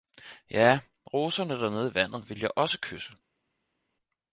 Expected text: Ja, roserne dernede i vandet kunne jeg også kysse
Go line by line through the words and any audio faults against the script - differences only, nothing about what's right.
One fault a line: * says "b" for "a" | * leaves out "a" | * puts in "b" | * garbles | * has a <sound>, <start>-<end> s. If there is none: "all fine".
* says "ville" for "kunne"